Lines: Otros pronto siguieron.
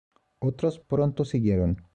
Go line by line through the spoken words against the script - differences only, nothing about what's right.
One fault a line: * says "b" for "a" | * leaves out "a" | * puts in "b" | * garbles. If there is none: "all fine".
all fine